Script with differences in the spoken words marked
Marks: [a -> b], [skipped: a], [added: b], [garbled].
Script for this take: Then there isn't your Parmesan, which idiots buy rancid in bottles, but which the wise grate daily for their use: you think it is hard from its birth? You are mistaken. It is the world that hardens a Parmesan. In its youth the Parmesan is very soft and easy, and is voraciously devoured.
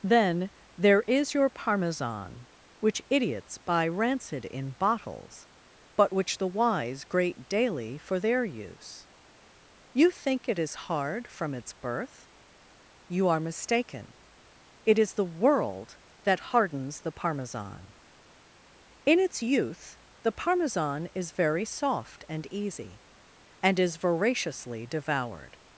Then there [isn't -> is] your Parmesan, which idiots buy rancid in bottles, but which the wise grate daily for their use: you think it is hard from its birth? You are mistaken. It is the world that hardens [a -> the] Parmesan. In its youth the Parmesan is very soft and easy, and is voraciously devoured.